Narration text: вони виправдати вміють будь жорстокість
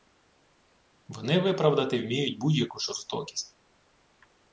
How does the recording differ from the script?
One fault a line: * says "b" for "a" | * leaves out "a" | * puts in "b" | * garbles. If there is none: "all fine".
* puts in "яку"